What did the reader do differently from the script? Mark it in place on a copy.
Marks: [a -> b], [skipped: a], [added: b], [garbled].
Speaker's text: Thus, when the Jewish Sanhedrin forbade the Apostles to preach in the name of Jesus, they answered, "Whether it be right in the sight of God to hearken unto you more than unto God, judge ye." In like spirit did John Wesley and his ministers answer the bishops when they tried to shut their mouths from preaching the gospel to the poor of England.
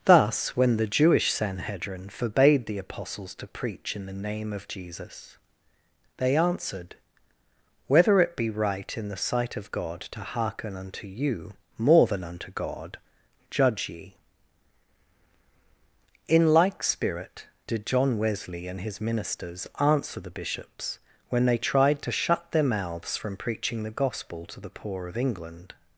Thus, when the Jewish Sanhedrin forbade the Apostles to preach in the name of Jesus, they answered, "Whether it be right in the sight of God to hearken unto you more than unto God, judge ye." In like spirit did John Wesley and his ministers answer the bishops when they tried to shut their mouths from preaching the gospel to the poor of England.